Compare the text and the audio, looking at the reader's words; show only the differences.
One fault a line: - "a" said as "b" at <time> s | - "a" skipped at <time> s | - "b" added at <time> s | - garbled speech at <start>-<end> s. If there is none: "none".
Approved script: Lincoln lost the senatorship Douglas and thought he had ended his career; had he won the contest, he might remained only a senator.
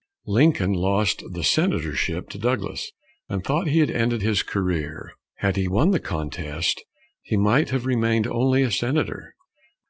- "to" added at 2.3 s
- "have" added at 7.7 s